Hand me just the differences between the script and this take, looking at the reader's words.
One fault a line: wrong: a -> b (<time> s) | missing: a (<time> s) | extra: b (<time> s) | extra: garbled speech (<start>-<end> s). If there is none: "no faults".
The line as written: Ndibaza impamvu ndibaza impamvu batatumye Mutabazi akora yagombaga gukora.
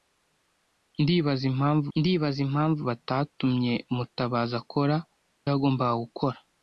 no faults